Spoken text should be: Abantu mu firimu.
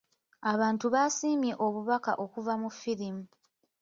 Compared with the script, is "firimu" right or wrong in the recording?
right